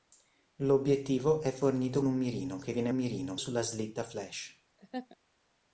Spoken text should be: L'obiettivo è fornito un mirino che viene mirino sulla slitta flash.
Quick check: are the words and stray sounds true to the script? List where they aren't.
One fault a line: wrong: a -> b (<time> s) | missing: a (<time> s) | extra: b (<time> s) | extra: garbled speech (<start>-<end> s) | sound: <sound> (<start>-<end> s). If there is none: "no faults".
sound: laugh (4.8-5.2 s)